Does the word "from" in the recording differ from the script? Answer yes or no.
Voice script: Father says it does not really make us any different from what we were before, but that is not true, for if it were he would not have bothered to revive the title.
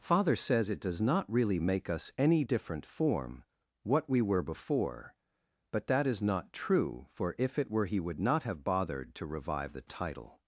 yes